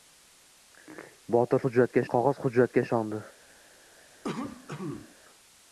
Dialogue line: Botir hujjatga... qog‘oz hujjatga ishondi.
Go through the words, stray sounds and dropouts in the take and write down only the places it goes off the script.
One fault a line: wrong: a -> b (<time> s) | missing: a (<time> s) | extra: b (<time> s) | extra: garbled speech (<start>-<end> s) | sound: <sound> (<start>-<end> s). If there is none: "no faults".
sound: cough (4.2-5.2 s)